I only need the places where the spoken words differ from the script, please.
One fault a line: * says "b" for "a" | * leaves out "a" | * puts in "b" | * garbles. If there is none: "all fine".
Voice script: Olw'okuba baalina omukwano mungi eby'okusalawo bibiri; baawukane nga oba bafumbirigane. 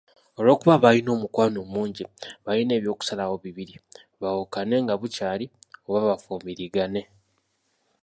* puts in "baalina"
* puts in "bukyali"